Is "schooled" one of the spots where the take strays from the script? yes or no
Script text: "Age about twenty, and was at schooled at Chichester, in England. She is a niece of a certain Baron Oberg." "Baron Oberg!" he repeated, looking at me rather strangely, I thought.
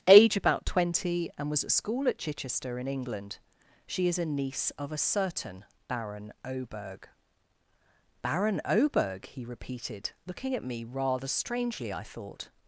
yes